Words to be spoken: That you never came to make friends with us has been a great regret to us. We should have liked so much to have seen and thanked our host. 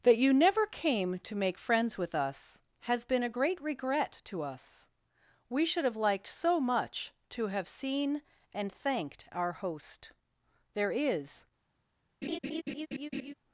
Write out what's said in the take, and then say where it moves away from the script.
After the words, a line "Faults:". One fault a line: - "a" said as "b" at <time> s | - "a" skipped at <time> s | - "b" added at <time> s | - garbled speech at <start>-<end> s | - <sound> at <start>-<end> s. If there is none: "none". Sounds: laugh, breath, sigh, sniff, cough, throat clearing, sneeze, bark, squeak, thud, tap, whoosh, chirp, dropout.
That you never came to make friends with us has been a great regret to us. We should have liked so much to have seen and thanked our host. There is
Faults:
- "There is" added at 10.7 s
- laugh at 12.2-13.3 s